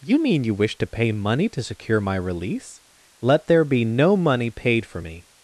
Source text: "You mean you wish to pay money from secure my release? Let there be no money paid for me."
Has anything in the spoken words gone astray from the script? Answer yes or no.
yes